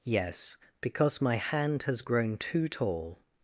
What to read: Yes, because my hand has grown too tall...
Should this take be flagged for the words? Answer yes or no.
no